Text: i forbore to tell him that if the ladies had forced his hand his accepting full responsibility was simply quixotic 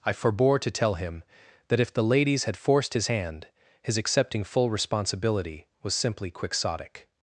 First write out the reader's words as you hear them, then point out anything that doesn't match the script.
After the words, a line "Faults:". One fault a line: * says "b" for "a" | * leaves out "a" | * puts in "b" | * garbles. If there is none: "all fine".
i forbore to tell him that if the ladies had forced his hand his accepting full responsibility was simply quixotic
Faults:
all fine